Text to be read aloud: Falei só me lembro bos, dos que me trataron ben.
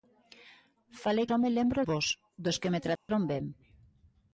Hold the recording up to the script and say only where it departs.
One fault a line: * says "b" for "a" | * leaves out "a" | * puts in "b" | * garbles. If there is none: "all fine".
all fine